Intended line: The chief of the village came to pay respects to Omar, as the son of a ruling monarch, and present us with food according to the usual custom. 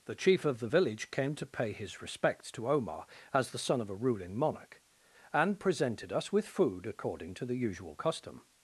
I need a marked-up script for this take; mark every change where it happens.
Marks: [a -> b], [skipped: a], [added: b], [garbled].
The chief of the village came to pay [added: his] respects to Omar, as the son of a ruling monarch, and [present -> presented] us with food according to the usual custom.